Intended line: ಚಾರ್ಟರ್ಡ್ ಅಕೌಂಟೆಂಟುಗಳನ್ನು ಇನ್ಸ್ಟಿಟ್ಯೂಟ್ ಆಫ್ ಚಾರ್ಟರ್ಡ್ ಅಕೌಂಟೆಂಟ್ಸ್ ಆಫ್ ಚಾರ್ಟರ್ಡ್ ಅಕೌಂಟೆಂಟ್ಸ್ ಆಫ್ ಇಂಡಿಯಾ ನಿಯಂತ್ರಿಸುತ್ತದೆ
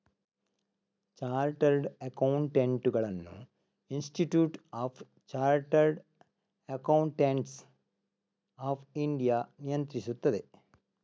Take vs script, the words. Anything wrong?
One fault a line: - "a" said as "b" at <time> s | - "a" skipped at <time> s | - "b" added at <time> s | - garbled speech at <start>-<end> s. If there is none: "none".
- "ಚಾರ್ಟರ್ಡ್ ಅಕೌಂಟೆಂಟ್ಸ್ ಆಫ್" skipped at 8.8 s